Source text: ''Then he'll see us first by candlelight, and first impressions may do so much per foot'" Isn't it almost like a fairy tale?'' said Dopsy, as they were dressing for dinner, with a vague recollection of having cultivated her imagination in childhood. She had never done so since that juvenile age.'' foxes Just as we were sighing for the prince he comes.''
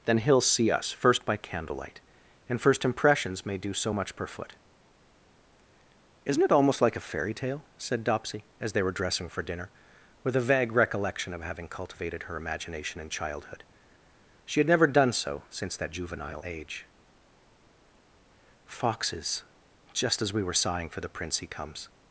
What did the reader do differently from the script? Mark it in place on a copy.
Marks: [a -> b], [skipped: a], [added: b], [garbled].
''Then he'll see us first by candlelight, and first impressions may do so much per foot'" Isn't it almost like a fairy tale?'' said Dopsy, as they were dressing for dinner, with a vague recollection of having cultivated her imagination in childhood. She had never done so since that juvenile age.'' foxes Just as we were sighing for the prince he comes.''